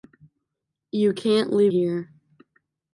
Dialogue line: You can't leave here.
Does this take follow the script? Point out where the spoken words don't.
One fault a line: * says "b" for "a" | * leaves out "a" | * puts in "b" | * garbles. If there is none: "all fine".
all fine